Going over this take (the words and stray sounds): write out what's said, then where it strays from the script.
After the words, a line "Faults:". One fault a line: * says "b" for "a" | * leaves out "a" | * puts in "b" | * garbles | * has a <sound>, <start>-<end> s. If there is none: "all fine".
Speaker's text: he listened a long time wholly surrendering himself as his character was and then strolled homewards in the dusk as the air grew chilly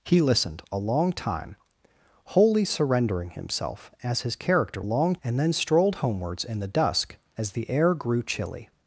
he listened a long time wholly surrendering himself as his character long and then strolled homewards in the dusk as the air grew chilly
Faults:
* says "long" for "was"